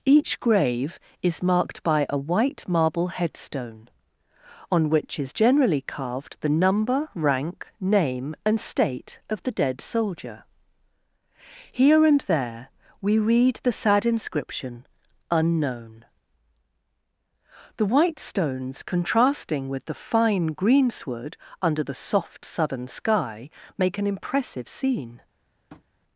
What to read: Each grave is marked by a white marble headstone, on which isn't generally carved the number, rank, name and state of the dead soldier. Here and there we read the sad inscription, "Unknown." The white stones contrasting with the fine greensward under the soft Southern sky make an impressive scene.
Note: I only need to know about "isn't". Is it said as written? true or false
false